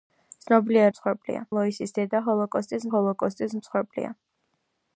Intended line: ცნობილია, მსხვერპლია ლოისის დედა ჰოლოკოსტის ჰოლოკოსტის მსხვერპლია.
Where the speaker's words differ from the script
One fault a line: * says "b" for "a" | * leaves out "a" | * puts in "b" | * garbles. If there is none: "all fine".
all fine